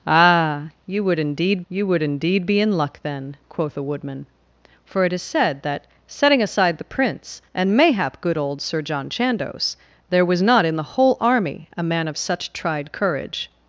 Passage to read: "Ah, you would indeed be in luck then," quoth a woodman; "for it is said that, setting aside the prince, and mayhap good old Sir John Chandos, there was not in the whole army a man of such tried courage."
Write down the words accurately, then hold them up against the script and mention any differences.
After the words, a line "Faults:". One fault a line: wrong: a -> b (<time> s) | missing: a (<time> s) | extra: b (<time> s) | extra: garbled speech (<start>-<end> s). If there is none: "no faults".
"Ah, you would indeed you would indeed be in luck then," quoth a woodman; "for it is said that, setting aside the prince, and mayhap good old Sir John Chandos, there was not in the whole army a man of such tried courage."
Faults:
extra: you would indeed (1.7 s)